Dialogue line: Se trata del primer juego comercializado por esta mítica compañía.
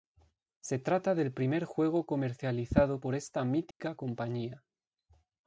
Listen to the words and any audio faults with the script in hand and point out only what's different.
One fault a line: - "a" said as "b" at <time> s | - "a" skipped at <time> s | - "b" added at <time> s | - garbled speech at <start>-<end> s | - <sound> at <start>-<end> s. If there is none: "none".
- dropout at 3.7-3.8 s